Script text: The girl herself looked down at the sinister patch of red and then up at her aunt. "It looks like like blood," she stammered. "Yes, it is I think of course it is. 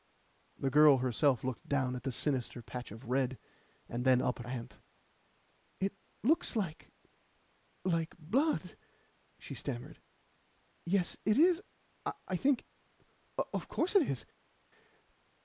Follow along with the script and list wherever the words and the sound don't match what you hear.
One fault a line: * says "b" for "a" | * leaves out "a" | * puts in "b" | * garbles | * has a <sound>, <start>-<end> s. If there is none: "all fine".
* leaves out "her"